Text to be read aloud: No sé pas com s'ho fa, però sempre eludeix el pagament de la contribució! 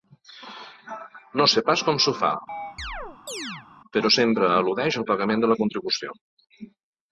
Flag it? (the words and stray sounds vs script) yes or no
yes